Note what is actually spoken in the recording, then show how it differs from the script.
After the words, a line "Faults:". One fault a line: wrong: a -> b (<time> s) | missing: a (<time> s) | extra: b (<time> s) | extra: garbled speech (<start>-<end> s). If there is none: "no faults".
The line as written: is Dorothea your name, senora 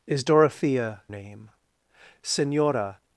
is Dorothea name, senora
Faults:
missing: your (1.0 s)